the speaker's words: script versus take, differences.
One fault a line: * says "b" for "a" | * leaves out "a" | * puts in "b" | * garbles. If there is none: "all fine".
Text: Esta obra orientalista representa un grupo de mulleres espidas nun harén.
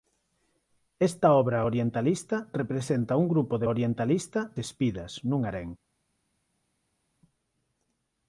* says "orientalista" for "mulleres"